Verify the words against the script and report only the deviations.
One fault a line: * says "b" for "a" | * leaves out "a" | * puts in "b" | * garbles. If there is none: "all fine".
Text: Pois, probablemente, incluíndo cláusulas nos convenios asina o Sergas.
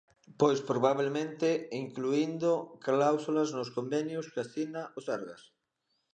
* puts in "que"